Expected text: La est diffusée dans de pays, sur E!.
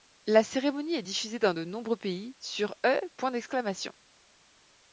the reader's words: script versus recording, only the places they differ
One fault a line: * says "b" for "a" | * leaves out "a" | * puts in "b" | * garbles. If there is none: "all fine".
* puts in "cérémonie"
* puts in "nombreux"